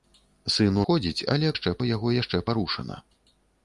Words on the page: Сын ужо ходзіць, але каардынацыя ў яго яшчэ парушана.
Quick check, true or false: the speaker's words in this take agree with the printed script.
false